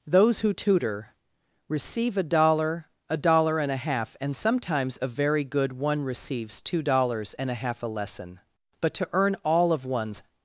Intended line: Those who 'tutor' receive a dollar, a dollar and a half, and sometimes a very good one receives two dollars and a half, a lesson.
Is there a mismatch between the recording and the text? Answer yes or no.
yes